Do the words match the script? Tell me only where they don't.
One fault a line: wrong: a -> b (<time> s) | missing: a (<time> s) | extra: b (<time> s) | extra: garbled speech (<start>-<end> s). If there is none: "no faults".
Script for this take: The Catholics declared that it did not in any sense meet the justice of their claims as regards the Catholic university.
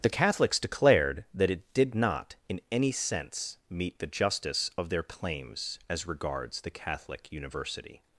no faults